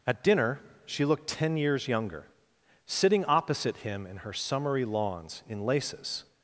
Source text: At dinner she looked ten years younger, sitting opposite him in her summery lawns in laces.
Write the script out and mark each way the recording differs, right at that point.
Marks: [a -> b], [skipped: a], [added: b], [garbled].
At dinner she looked ten years younger, sitting opposite him in her summery lawns in laces.